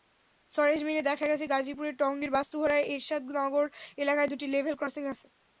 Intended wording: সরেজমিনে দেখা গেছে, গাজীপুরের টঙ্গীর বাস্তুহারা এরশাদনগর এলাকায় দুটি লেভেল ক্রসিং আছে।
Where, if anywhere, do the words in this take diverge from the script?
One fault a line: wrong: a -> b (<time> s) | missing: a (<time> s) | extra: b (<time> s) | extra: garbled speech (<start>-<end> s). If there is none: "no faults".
no faults